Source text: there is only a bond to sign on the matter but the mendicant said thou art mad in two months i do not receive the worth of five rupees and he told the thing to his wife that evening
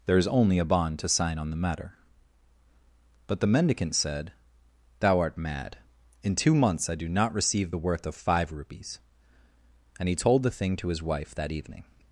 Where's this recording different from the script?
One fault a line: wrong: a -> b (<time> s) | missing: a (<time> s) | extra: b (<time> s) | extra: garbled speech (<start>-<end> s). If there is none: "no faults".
no faults